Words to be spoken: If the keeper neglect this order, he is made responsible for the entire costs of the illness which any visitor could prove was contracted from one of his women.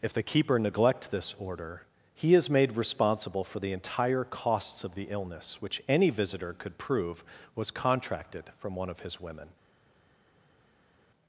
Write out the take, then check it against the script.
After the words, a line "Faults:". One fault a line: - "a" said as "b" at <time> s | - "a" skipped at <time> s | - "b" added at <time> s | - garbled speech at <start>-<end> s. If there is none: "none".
If the keeper neglect this order, he is made responsible for the entire costs of the illness which any visitor could prove was contracted from one of his women.
Faults:
none